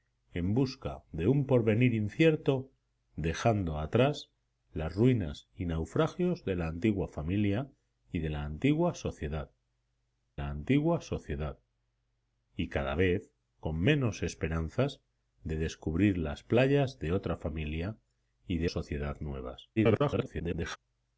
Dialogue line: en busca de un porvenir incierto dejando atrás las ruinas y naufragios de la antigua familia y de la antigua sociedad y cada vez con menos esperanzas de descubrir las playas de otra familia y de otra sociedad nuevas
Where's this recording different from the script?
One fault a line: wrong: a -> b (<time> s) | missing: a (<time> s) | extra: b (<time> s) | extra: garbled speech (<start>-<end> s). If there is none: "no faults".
extra: la antigua sociedad (10.4 s)
missing: otra (18.7 s)
extra: garbled speech (19.8-20.8 s)